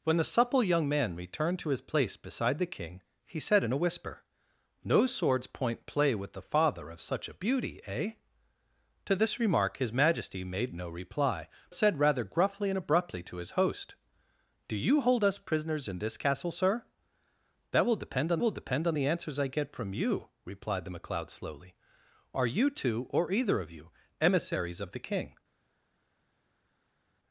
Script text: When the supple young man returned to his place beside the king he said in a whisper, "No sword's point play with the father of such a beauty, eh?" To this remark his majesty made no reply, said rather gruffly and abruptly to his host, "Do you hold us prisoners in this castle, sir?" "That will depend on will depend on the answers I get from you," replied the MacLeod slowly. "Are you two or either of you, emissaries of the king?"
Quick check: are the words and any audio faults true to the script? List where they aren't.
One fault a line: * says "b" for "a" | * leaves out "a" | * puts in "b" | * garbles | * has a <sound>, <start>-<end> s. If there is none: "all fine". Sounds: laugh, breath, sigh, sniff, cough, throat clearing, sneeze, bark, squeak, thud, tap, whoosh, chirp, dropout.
all fine